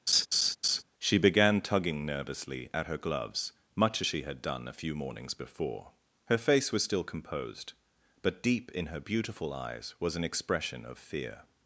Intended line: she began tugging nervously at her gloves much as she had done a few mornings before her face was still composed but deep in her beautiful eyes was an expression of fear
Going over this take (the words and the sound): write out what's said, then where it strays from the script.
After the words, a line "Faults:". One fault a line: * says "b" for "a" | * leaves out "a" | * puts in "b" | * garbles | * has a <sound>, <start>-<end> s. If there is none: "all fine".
she began tugging nervously at her gloves much as she had done a few mornings before her face was still composed but deep in her beautiful eyes was an expression of fear
Faults:
* has a laugh, 0.1-0.8 s